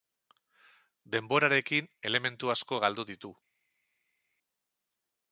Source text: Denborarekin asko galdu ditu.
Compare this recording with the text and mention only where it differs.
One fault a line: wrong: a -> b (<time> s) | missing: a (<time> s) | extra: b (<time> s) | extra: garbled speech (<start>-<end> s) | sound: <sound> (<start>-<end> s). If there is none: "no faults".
extra: elementu (2.1 s)